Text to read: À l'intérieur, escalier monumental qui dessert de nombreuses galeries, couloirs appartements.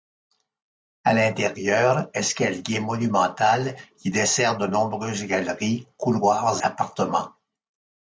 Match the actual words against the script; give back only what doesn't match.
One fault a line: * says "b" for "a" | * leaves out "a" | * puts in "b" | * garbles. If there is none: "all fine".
all fine